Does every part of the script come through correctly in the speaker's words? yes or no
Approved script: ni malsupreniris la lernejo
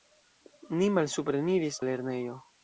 yes